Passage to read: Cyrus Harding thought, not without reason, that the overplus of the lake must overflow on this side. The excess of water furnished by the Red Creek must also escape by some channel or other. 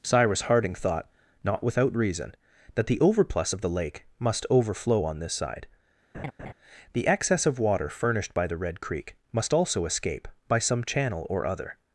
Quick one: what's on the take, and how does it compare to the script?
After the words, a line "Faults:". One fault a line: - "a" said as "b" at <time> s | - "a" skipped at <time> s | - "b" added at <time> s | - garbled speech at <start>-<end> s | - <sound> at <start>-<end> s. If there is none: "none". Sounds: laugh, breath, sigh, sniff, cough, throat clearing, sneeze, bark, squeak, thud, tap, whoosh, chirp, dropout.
Cyrus Harding thought, not without reason, that the overplus of the lake must overflow on this side. The excess of water furnished by the Red Creek must also escape by some channel or other.
Faults:
- laugh at 6.1-6.5 s